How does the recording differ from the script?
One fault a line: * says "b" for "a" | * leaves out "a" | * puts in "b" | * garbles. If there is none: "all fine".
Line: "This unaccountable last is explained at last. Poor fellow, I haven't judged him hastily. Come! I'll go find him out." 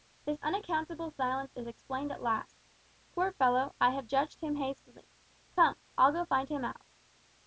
* says "silence" for "last"
* says "have" for "haven't"